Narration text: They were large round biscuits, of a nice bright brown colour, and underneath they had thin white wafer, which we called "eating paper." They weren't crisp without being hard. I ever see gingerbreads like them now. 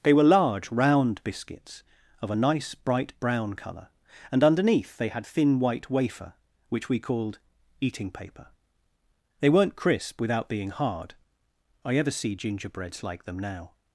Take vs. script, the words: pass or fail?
pass